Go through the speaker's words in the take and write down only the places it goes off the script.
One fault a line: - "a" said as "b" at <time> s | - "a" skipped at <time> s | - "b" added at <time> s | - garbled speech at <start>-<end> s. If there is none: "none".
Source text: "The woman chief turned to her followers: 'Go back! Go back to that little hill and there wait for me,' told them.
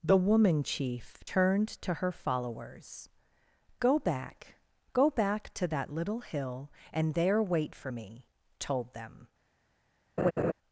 none